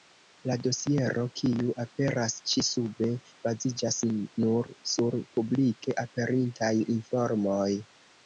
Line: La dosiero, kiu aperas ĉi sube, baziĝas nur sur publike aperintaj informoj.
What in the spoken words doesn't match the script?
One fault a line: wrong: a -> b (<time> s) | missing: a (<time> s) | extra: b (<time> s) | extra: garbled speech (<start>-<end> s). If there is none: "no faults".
no faults